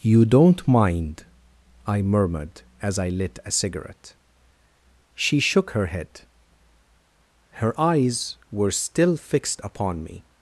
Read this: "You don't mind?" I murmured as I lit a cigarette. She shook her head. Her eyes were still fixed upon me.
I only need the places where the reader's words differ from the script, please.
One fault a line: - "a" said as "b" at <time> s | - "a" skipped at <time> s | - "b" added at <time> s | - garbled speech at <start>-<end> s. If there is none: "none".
none